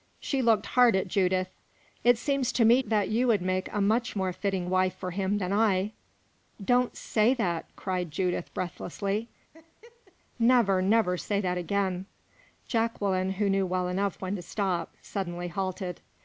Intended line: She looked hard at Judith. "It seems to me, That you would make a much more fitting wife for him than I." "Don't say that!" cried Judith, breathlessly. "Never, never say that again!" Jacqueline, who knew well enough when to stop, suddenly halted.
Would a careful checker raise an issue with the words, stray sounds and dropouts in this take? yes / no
yes